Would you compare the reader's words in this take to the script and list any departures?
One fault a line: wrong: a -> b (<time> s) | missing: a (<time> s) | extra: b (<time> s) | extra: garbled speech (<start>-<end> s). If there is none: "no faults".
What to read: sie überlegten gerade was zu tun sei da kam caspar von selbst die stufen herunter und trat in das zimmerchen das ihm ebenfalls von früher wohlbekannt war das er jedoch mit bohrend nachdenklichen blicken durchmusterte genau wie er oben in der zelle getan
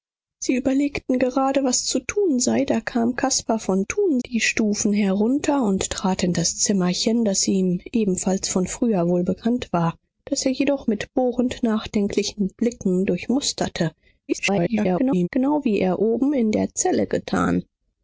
wrong: selbst -> tun (3.8 s)
extra: garbled speech (14.3-15.3 s)